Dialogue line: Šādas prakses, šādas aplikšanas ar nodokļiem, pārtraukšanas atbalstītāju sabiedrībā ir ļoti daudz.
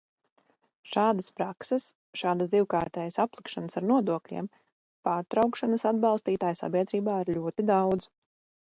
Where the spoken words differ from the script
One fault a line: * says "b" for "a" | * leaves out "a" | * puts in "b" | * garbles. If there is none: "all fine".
* puts in "divkārtējas"